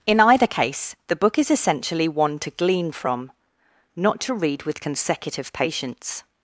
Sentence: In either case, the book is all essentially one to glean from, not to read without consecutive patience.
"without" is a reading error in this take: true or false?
true